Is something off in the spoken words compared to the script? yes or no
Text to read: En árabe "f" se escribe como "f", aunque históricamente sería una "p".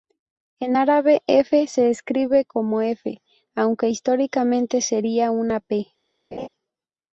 no